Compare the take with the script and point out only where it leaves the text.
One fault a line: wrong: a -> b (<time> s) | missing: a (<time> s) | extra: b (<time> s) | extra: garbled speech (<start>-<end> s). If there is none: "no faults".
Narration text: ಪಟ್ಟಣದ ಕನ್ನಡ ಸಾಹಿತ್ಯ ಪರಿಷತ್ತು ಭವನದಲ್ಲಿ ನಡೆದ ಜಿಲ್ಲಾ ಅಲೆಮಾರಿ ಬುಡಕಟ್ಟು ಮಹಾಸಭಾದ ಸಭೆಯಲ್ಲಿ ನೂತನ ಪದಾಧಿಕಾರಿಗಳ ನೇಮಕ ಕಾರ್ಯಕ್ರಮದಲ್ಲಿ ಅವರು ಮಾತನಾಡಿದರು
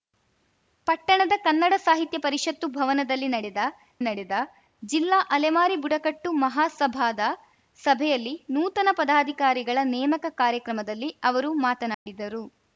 extra: ನಡೆದ (4.0 s)